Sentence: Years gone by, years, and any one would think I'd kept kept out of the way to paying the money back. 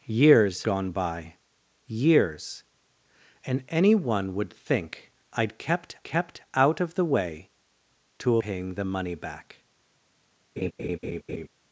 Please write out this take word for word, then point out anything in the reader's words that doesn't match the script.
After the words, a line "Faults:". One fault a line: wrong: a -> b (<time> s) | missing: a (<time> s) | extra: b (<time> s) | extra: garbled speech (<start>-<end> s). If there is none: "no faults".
Years gone by, years, and any one would think I'd kept kept out of the way to paying the money back.
Faults:
no faults